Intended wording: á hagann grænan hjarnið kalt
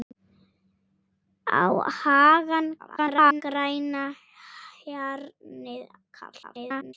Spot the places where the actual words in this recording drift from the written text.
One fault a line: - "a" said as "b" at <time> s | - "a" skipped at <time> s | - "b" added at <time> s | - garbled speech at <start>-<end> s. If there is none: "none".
- garbled speech at 2.8-3.4 s
- garbled speech at 6.4-6.9 s